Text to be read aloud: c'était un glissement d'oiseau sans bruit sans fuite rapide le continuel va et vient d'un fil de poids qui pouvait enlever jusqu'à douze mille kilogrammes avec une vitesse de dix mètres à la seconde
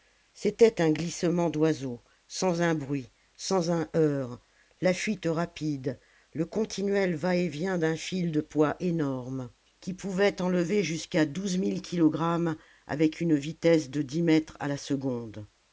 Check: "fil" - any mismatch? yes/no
no